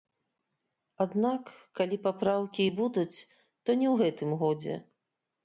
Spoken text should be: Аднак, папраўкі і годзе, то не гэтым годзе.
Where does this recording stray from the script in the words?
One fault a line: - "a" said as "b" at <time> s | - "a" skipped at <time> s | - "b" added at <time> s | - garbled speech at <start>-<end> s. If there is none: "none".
- "калі" added at 1.8 s
- "годзе" said as "будуць" at 2.8 s
- "ў" added at 3.9 s